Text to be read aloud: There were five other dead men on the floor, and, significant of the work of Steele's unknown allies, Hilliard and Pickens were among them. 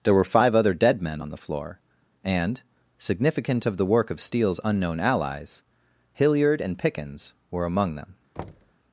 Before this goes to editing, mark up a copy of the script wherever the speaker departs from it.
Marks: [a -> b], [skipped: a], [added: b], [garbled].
There were five other dead men on the floor, and, significant of the work of Steele's unknown allies, Hilliard and Pickens were among them.